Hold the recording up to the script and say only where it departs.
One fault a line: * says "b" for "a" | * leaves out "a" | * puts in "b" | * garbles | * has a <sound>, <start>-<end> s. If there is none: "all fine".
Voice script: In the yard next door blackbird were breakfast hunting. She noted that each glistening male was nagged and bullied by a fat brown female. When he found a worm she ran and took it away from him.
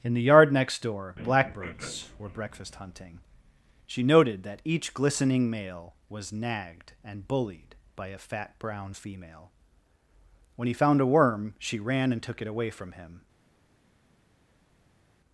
* says "blackbirds" for "blackbird"